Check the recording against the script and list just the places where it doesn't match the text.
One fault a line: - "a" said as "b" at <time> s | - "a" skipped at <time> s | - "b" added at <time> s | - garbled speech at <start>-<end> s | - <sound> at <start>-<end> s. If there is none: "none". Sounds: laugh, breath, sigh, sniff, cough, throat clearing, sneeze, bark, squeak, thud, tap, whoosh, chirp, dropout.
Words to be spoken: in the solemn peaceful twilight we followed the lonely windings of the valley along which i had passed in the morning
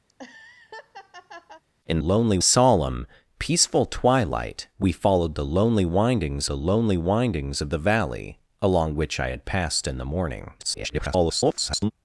- laugh at 0.1-1.6 s
- "the" said as "lonely" at 2.0 s
- "the lonely windings" added at 6.5 s
- garbled speech at 10.6-11.9 s